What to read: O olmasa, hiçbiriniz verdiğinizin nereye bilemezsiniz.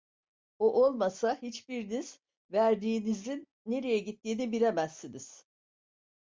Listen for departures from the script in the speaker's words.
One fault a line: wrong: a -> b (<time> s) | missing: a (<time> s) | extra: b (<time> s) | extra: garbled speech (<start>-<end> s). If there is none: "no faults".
extra: gittiğini (4.0 s)